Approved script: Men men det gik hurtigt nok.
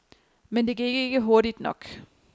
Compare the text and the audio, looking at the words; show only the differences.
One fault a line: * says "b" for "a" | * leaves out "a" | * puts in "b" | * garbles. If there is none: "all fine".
* leaves out "men"
* puts in "ikke"